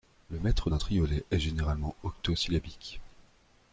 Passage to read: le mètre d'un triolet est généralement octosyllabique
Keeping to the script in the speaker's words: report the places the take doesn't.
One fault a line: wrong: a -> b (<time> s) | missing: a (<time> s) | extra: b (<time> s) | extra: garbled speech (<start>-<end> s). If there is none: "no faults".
no faults